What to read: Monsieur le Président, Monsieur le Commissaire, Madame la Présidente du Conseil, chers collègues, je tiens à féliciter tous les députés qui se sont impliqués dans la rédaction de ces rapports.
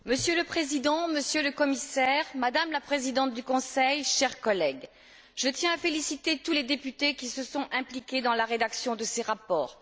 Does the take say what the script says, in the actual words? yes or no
yes